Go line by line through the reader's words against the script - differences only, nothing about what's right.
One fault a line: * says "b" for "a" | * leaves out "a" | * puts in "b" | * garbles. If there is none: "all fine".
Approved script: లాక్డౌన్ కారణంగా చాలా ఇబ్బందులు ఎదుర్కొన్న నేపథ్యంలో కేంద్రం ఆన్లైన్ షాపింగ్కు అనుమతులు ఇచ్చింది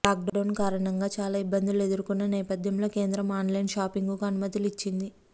all fine